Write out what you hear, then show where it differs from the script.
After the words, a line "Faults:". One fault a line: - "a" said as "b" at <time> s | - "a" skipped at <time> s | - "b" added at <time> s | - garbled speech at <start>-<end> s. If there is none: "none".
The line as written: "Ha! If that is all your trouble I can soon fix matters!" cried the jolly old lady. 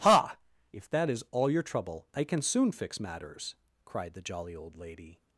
"Ha! If that is all your trouble I can soon fix matters!" cried the jolly old lady.
Faults:
none